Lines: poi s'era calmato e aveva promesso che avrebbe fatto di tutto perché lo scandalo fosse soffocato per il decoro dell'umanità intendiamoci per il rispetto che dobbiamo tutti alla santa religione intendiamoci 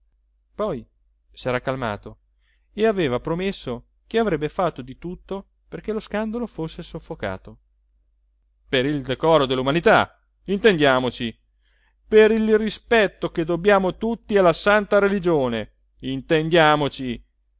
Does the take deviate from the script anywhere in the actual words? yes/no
no